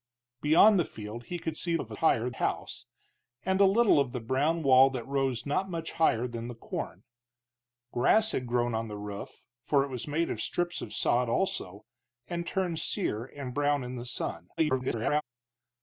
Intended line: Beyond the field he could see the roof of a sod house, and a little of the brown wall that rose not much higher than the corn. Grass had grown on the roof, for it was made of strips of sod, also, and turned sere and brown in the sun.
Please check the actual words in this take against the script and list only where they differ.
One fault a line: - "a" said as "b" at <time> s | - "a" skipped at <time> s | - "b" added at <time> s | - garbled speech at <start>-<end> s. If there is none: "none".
- "the roof" skipped at 1.8 s
- "sod" said as "higher" at 1.9 s
- garbled speech at 14.6-15.2 s